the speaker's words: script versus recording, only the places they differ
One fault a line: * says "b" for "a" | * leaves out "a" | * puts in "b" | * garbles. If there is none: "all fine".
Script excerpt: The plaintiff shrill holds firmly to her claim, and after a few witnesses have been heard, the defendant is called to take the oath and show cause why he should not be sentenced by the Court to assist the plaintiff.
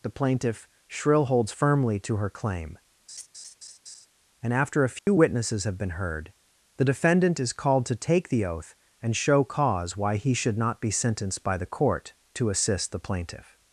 all fine